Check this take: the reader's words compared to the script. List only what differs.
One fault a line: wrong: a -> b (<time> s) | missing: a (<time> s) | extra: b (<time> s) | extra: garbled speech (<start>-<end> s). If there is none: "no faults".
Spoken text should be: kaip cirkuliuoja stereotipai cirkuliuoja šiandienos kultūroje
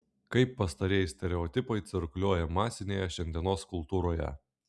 wrong: cirkuliuoja -> pastarieji (0.6 s)
extra: masinėje (2.6 s)